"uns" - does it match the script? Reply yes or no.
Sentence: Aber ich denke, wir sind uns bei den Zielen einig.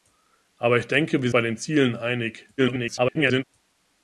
no